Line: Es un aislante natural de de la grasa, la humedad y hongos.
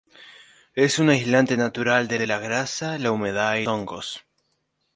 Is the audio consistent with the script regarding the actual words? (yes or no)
yes